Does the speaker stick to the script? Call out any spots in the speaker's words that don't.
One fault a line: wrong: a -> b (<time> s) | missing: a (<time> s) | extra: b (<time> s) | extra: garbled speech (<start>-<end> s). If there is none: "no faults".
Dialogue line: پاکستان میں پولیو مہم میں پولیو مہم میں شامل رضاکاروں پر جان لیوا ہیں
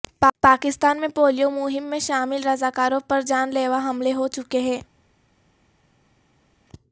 missing: پولیو مہم میں (2.0 s)
extra: حملے ہو چکے (3.8 s)